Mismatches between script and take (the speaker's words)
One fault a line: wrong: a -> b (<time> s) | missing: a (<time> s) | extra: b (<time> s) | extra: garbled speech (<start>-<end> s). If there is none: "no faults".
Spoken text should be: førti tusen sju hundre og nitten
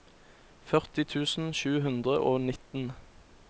no faults